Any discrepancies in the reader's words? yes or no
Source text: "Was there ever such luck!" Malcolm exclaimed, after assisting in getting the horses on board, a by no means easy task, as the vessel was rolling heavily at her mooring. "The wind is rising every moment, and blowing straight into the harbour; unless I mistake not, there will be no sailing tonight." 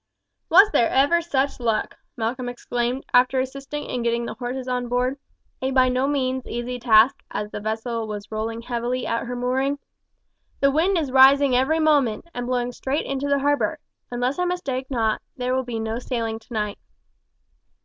no